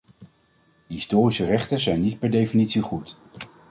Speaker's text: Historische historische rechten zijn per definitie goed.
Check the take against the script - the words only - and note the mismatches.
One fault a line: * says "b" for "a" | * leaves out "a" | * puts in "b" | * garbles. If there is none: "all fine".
* leaves out "historische"
* puts in "niet"